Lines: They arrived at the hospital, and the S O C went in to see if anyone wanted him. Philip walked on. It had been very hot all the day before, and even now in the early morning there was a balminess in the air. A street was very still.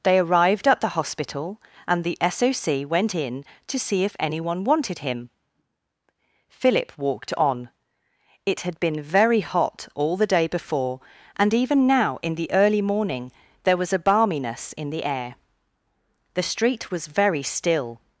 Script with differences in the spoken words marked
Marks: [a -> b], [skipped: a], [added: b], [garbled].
They arrived at the hospital, and the S O C went in to see if anyone wanted him. Philip walked on. It had been very hot all the day before, and even now in the early morning there was a balminess in the air. [A -> The] street was very still.